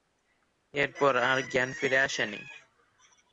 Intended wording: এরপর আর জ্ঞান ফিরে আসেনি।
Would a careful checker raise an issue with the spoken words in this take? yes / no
no